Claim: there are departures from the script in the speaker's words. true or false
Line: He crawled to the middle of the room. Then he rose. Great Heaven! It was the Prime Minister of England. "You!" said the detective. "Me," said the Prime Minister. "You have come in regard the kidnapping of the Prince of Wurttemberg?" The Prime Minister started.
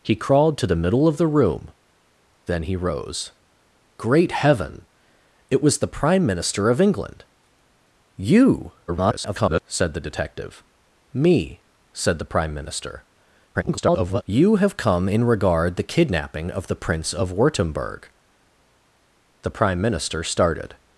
true